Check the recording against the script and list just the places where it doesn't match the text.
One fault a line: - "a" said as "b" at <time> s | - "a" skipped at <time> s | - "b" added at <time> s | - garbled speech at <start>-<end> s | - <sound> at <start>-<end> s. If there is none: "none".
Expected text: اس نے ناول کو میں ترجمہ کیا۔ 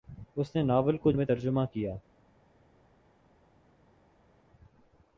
none